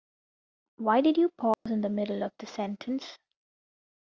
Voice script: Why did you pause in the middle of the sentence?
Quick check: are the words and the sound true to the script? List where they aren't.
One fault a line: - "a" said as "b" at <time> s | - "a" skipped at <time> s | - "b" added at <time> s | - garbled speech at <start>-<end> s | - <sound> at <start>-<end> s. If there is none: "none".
- dropout at 1.5-1.7 s